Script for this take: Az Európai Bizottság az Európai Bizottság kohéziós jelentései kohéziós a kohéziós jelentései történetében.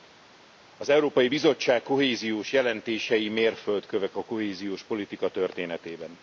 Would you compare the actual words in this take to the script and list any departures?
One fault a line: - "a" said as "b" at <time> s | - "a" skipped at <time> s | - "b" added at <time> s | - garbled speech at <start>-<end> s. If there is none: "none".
- "az Európai Bizottság" skipped at 1.8 s
- "kohéziós" said as "mérföldkövek" at 3.3 s
- "jelentései" said as "politika" at 4.8 s